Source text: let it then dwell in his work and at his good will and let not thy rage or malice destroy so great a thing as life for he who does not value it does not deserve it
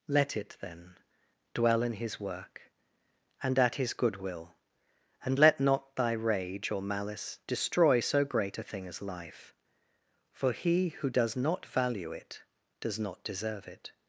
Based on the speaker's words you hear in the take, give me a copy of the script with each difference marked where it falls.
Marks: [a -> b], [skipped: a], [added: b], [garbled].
let it then dwell in his work and at his good will and let not thy rage or malice destroy so great a thing as life for he who does not value it does not deserve it